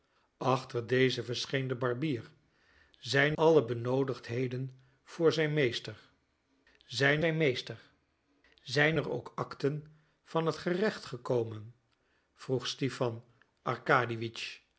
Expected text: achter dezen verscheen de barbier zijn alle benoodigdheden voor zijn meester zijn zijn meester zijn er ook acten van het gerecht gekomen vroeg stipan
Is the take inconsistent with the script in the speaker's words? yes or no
no